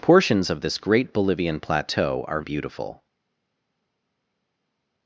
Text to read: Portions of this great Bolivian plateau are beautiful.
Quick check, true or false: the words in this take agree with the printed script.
true